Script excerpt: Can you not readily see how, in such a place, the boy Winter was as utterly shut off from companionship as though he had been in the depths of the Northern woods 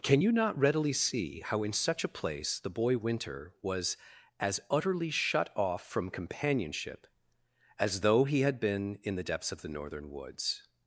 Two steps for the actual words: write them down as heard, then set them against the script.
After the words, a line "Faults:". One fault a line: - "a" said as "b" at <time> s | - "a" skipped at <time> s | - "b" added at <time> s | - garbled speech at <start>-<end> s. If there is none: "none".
Can you not readily see how, in such a place, the boy Winter was as utterly shut off from companionship as though he had been in the depths of the Northern woods
Faults:
none